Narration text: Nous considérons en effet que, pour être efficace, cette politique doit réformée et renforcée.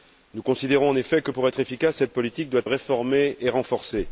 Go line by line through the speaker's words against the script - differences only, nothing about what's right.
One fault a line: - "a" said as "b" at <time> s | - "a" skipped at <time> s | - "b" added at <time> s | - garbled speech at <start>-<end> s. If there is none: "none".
none